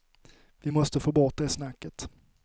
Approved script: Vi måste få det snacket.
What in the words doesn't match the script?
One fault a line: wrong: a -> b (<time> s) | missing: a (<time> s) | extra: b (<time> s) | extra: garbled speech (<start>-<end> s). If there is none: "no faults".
extra: bort (1.1 s)